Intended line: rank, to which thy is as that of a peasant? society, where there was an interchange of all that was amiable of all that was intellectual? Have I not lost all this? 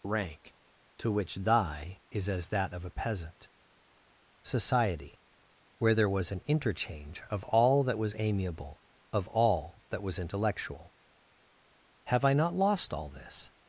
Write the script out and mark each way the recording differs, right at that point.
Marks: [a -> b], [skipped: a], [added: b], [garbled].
rank, to which thy is as that of a peasant? society, where there was an interchange of all that was amiable of all that was intellectual? Have I not lost all this?